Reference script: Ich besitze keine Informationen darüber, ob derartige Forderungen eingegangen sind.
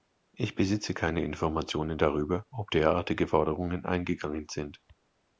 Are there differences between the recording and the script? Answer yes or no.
no